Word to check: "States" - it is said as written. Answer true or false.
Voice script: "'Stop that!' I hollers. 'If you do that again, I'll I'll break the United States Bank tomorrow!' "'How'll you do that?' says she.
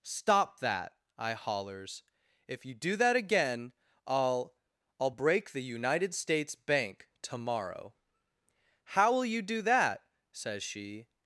true